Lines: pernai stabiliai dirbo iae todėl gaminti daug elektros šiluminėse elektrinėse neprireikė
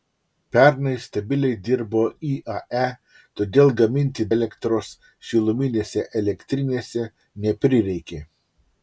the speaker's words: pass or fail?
fail